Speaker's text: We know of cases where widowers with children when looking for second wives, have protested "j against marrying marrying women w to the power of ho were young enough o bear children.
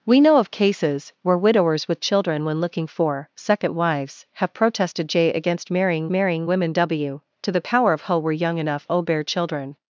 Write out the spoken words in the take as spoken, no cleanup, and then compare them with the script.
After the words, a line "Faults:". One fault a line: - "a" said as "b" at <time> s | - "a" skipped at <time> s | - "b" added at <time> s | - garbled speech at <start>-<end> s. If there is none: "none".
We know of cases where widowers with children when looking for second wives, have protested "j against marrying marrying women w to the power of ho were young enough o bear children.
Faults:
none